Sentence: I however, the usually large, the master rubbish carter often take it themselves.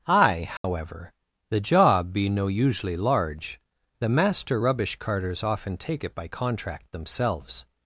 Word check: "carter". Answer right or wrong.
wrong